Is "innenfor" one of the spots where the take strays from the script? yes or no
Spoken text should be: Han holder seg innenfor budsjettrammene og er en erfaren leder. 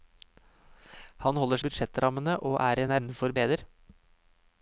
yes